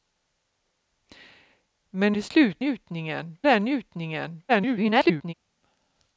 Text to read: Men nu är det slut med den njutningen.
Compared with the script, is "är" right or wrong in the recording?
wrong